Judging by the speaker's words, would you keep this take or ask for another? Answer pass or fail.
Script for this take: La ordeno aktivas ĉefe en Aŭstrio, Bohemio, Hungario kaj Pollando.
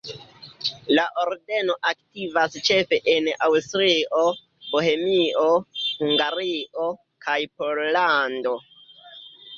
pass